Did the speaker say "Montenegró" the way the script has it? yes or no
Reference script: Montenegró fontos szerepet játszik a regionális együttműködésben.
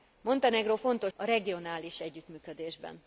yes